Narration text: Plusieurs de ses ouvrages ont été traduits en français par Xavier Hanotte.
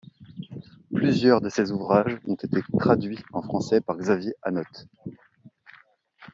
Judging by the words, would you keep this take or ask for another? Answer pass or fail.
pass